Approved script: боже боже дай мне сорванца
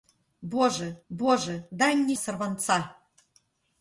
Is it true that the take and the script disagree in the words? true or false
false